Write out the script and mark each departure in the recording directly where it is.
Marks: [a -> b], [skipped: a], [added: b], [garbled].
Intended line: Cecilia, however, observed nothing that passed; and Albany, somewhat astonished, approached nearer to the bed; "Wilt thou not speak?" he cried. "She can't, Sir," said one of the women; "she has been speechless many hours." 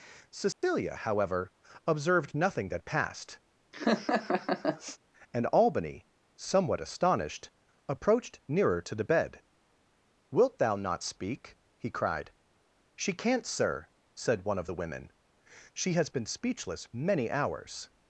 Cecilia, however, observed nothing that passed; and Albany, somewhat astonished, approached nearer to the bed; "Wilt thou not speak?" he cried. "She can't, Sir," said one of the women; "she has been speechless many hours."